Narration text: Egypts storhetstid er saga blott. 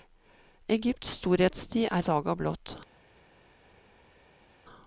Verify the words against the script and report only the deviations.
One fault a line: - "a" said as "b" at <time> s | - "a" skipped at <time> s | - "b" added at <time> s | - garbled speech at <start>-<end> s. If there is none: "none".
none